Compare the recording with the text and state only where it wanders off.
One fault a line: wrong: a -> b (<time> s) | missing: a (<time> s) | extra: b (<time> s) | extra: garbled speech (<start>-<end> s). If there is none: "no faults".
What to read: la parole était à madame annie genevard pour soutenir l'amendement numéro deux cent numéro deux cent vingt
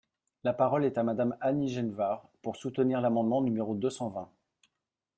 wrong: était -> est (0.8 s)
missing: numéro deux cent (4.1 s)